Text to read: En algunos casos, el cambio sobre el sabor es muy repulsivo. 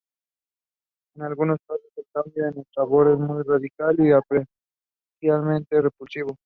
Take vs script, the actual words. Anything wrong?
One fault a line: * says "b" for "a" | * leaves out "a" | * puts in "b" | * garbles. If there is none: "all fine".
* says "en" for "sobre"
* puts in "radical y apreciablemente"